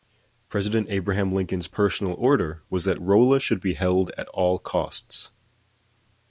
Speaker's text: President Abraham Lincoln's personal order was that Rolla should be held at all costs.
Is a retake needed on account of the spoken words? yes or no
no